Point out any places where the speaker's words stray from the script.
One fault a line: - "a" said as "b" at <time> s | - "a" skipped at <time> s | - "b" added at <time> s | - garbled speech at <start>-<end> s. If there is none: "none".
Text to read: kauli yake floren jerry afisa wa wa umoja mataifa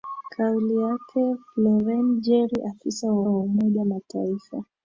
none